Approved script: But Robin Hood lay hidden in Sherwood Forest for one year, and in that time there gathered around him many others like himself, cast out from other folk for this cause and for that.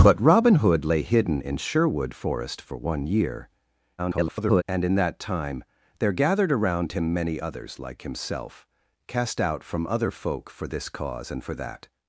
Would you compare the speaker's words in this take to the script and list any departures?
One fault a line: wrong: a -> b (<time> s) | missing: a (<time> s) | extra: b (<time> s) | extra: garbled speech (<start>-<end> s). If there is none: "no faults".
extra: garbled speech (4.0-4.6 s)